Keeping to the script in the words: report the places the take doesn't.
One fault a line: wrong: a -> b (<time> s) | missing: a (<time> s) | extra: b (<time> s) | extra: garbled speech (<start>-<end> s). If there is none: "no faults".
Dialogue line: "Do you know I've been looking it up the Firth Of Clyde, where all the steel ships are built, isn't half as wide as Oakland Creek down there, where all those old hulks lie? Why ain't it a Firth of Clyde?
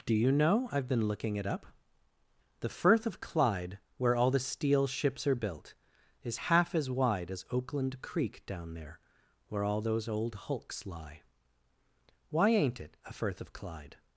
wrong: isn't -> is (6.2 s)